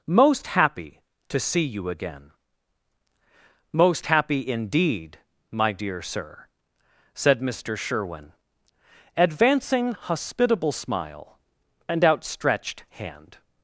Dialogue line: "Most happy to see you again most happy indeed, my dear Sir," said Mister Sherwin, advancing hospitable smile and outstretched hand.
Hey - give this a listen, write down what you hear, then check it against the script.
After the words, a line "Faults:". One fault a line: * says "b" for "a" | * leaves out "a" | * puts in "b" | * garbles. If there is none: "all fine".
"Most happy to see you again most happy indeed, my dear Sir," said Mister Sherwin, advancing hospitable smile and outstretched hand.
Faults:
all fine